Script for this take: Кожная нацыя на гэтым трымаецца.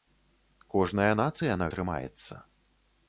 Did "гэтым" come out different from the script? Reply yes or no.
yes